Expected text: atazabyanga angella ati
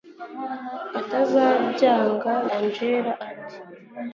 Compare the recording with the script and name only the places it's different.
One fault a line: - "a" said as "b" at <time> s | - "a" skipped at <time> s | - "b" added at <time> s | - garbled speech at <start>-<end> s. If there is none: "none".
none